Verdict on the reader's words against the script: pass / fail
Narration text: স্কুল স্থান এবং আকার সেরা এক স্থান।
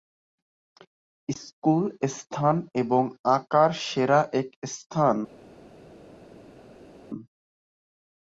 pass